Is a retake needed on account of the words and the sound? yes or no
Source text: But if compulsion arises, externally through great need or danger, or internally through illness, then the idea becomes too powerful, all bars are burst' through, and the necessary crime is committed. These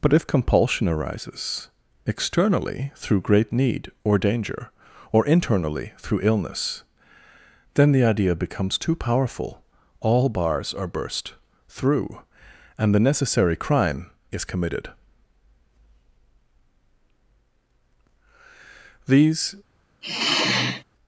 yes